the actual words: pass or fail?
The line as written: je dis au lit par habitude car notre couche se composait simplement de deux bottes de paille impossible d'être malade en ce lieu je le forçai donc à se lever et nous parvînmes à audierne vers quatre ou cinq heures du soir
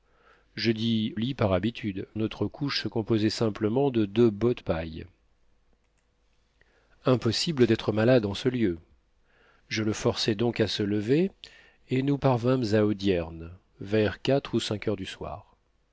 fail